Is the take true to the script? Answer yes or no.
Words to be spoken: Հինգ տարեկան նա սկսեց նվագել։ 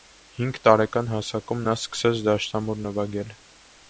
no